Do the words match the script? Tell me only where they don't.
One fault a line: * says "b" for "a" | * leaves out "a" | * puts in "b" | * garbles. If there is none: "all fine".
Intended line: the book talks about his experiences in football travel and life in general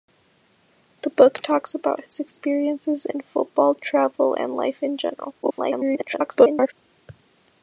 * garbles